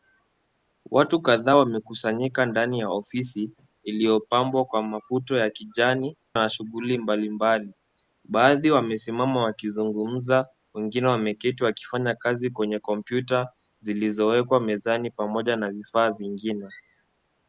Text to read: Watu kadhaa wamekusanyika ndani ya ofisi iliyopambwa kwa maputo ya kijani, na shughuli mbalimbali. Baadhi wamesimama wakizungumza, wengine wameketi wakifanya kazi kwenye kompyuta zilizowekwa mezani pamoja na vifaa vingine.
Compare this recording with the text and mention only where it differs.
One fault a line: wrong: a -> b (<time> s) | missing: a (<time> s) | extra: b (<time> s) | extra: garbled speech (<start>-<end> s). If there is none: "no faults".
no faults